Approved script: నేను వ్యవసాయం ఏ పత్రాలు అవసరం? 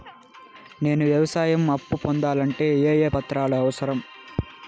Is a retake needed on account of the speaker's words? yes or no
yes